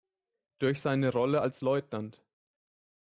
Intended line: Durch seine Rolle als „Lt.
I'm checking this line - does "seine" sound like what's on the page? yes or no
yes